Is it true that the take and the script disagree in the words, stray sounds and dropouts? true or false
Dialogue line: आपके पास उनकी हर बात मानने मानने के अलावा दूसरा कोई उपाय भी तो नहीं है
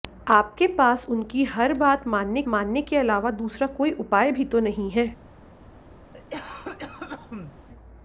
true